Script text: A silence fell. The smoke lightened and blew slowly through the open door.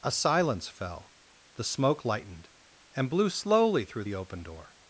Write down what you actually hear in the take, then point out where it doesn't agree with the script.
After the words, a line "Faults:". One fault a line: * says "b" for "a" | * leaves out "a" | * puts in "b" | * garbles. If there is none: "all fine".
A silence fell. The smoke lightened and blew slowly through the open door.
Faults:
all fine